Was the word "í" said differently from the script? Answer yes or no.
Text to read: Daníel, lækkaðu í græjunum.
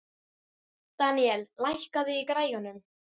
no